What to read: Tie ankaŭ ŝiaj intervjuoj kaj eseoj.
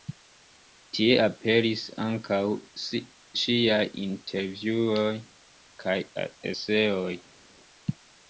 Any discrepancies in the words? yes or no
yes